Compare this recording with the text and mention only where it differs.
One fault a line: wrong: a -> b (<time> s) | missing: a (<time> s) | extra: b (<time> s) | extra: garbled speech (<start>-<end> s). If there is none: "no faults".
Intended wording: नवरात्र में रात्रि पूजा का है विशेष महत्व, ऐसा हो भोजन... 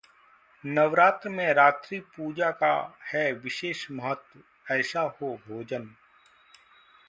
no faults